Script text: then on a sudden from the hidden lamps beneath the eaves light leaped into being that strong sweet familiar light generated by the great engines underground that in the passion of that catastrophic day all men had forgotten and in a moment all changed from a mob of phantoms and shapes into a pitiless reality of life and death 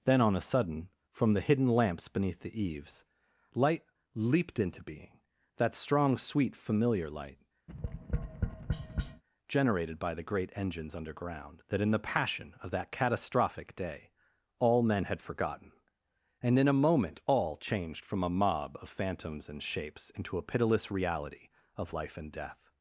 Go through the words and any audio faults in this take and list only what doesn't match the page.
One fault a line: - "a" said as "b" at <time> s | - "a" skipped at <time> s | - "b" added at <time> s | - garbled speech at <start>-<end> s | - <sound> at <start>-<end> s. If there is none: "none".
- tap at 7.7-9.2 s